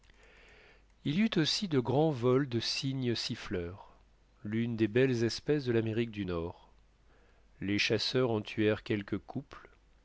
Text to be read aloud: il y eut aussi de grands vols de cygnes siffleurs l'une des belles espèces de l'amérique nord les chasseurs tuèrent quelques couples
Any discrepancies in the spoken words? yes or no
yes